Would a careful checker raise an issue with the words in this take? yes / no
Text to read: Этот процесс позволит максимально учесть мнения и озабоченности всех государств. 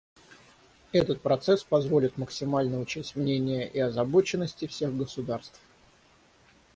no